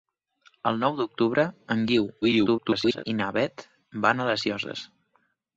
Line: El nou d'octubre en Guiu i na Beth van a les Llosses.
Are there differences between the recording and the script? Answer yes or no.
yes